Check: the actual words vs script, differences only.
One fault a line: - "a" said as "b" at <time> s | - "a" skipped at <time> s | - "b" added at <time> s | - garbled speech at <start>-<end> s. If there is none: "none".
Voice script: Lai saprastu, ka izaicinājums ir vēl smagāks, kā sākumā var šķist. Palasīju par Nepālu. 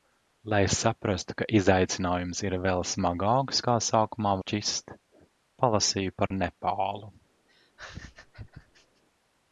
- "var" skipped at 4.3 s